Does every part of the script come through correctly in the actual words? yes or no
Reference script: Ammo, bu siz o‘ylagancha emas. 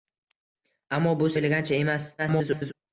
no